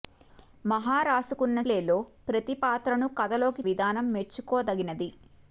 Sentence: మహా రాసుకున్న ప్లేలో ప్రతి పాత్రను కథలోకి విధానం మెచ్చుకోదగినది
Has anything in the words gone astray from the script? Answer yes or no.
no